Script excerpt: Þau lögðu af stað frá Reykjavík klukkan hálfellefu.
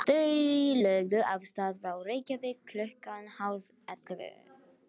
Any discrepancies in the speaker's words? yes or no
no